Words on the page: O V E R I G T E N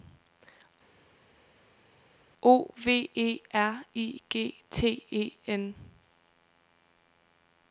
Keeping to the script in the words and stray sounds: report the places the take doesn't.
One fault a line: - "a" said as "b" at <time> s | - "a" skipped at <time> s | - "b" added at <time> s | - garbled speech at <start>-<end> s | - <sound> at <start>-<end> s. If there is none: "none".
none